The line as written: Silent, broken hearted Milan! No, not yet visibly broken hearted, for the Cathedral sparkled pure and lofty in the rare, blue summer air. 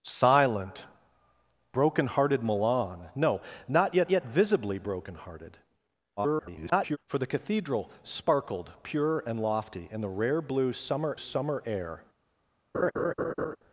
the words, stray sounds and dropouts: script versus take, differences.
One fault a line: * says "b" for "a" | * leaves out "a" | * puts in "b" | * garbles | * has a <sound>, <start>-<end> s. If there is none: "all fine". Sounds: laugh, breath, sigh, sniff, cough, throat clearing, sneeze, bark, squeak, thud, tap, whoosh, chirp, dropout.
* puts in "yet"
* garbles
* puts in "summer"
* has a laugh, 12.7-13.6 s